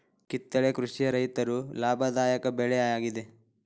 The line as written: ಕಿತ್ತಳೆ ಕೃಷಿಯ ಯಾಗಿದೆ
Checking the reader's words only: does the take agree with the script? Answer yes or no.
no